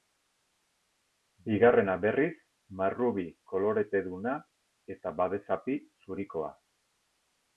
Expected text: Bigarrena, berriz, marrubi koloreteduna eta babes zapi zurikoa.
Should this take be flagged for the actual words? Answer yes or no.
no